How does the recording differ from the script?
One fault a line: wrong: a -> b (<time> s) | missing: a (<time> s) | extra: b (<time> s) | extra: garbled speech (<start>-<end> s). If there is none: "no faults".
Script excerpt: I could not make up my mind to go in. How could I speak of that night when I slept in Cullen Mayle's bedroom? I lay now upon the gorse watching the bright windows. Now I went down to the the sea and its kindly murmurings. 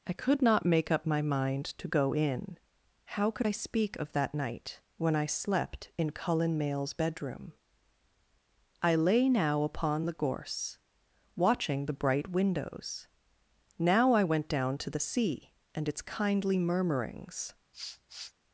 missing: the (15.0 s)